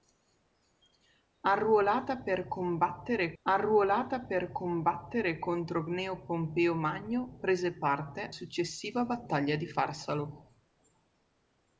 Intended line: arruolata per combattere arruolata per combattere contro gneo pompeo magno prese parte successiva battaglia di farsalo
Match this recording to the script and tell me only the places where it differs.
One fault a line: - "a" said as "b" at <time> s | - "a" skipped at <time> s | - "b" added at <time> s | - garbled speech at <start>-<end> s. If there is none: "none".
none